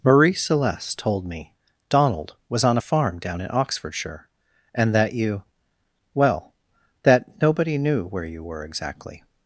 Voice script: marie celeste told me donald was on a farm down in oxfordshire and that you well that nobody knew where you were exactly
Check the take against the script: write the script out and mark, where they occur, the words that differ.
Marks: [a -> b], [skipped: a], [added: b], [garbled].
marie celeste told me donald was on a farm down in oxfordshire and that you well that nobody knew where you were exactly